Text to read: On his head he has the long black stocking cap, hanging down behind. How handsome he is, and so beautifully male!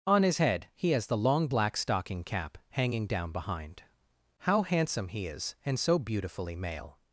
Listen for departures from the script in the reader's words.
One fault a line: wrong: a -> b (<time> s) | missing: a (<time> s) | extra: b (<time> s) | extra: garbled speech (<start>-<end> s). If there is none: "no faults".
no faults